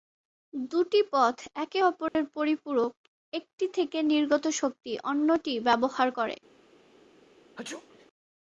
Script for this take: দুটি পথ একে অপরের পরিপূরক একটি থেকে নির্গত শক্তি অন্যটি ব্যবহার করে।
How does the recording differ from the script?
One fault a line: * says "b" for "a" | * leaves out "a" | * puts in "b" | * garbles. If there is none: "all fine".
all fine